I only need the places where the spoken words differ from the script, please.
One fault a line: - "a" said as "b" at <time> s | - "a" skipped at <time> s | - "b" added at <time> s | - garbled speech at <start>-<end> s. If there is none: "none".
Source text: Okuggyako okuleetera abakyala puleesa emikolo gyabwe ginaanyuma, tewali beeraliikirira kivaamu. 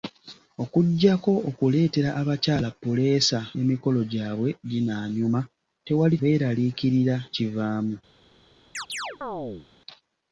none